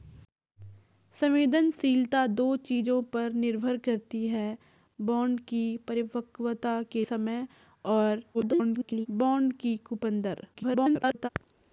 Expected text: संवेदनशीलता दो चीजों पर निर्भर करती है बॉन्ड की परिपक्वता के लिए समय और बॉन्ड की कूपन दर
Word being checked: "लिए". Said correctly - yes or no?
no